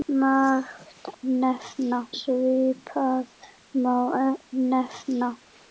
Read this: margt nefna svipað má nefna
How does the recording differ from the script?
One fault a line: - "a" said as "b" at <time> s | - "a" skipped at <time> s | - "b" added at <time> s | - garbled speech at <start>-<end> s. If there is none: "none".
none